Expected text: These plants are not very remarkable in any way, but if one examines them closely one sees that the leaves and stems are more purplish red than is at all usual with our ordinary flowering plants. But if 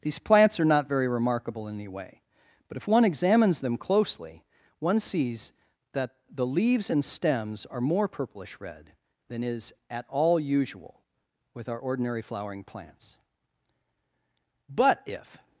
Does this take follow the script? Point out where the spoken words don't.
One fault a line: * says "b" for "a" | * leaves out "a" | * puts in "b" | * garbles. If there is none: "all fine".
all fine